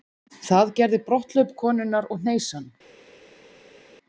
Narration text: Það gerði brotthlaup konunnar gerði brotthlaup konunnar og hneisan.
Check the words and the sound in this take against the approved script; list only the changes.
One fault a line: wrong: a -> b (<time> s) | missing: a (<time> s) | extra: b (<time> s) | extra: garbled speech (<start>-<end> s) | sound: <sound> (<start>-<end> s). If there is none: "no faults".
missing: gerði brotthlaup konunnar (2.1 s)